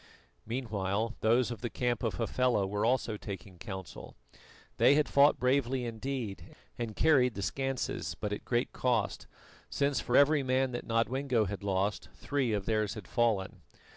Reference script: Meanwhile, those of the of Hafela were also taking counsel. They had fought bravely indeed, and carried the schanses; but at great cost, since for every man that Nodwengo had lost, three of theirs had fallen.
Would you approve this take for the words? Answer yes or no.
no